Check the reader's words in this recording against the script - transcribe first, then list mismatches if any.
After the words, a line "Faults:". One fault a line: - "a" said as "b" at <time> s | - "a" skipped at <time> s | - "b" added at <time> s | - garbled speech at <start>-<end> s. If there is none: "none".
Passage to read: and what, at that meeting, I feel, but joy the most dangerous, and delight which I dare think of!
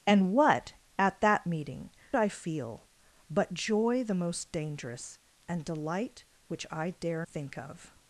and what, at that meeting, I feel, but joy the most dangerous, and delight which I dare think of!
Faults:
none